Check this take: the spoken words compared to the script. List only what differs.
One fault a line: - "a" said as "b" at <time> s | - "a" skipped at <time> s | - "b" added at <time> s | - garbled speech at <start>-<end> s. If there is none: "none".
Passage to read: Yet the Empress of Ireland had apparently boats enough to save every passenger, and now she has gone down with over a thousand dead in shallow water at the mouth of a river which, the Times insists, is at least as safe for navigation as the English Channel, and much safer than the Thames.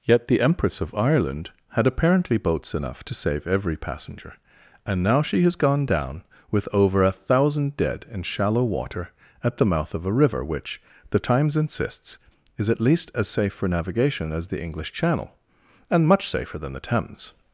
none